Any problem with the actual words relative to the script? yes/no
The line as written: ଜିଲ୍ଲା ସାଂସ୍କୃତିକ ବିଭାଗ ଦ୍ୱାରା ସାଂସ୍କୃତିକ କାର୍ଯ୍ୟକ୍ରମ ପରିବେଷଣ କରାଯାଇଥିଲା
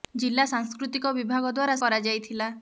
yes